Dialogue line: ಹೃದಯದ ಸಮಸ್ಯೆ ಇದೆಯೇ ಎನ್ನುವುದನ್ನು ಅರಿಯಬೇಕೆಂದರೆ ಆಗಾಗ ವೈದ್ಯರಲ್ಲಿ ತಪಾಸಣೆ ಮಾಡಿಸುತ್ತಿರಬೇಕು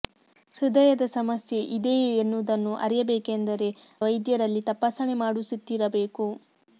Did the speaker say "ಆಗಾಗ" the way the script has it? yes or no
no